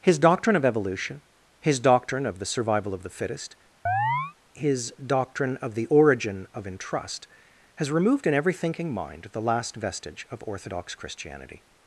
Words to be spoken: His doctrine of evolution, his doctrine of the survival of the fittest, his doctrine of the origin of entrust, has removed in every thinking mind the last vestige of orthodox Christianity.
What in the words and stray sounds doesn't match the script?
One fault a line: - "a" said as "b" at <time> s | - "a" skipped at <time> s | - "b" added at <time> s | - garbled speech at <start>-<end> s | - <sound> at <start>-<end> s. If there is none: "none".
- chirp at 3.9-4.3 s